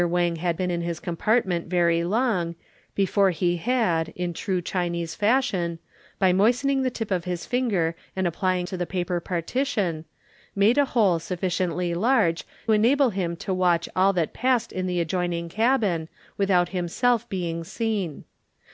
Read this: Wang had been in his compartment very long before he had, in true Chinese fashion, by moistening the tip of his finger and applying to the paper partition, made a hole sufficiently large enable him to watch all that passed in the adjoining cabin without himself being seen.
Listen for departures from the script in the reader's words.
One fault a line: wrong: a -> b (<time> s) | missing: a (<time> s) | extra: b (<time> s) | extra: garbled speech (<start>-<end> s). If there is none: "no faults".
no faults